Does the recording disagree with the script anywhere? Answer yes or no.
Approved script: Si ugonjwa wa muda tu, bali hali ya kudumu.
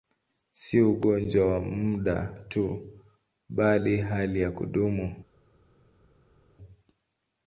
no